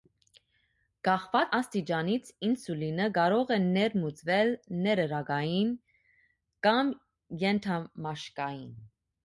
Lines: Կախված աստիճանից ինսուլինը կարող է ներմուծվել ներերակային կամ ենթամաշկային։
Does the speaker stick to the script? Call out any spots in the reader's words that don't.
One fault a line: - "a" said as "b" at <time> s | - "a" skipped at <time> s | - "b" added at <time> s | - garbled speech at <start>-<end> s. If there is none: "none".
none